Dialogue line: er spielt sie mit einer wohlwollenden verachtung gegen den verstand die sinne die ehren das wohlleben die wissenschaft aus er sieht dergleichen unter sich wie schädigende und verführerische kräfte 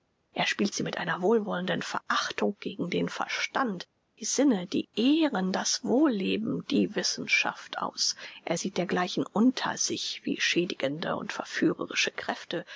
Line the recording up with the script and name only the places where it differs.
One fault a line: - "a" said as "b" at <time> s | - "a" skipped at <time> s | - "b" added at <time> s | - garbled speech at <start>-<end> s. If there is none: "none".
none